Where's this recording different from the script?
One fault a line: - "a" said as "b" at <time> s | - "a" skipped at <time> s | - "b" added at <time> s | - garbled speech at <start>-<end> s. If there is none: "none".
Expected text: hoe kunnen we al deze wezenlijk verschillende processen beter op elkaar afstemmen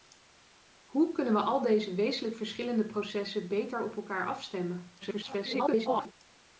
- garbled speech at 5.0-6.1 s